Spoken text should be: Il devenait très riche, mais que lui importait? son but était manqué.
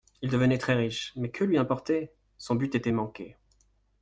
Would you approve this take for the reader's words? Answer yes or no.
yes